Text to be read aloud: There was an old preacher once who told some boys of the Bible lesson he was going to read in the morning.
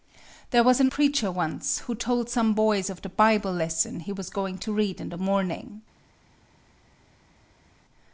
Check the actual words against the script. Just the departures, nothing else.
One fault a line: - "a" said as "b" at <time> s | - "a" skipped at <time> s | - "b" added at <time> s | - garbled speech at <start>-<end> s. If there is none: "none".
- "old" skipped at 0.9 s